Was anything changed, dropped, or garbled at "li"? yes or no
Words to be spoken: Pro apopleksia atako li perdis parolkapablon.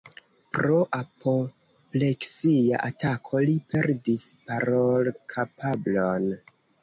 no